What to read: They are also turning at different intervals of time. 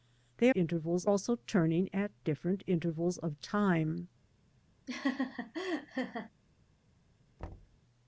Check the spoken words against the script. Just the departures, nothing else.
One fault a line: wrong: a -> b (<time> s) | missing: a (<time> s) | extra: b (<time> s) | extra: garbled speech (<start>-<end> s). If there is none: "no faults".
wrong: are -> intervals (0.5 s)